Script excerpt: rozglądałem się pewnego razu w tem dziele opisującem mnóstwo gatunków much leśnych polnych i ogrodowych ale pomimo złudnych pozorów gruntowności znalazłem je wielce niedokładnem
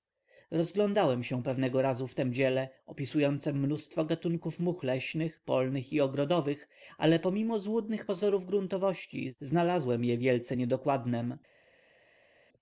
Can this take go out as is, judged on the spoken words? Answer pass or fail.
pass